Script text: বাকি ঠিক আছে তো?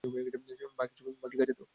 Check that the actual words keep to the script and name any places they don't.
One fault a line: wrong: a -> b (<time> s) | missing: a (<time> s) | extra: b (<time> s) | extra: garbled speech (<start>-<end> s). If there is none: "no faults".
no faults